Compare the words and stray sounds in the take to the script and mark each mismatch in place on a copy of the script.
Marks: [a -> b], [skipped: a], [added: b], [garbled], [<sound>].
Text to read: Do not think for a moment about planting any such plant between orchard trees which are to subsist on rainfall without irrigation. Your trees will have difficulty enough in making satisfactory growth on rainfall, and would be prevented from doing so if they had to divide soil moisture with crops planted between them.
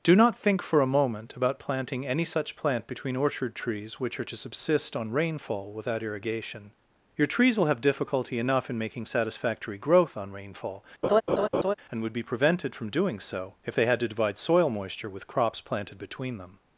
Do not think for a moment about planting any such plant between orchard trees which are to subsist on rainfall without irrigation. Your trees will have difficulty enough in making satisfactory growth on rainfall, [laugh] and would be prevented from doing so if they had to divide soil moisture with crops planted between them.